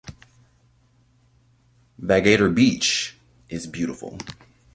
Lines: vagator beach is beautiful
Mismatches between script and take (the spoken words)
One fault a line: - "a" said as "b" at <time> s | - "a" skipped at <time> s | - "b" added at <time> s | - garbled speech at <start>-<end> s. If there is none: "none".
none